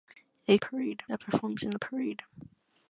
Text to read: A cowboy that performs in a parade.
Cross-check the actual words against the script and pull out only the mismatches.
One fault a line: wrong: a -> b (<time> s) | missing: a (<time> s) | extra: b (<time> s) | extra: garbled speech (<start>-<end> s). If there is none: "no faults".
wrong: cowboy -> parade (0.6 s)